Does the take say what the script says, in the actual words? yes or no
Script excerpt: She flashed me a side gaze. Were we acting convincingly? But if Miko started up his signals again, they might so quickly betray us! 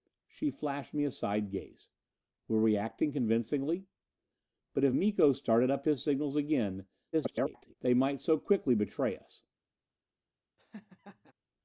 no